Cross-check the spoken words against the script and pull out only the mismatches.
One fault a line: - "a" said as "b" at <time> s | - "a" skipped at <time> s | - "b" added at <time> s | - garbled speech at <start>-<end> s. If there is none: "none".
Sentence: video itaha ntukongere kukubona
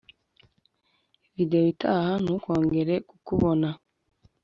none